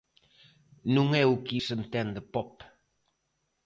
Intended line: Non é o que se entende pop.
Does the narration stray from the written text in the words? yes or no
no